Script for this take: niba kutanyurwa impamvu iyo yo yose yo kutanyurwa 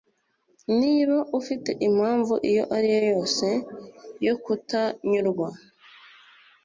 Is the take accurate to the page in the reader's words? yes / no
no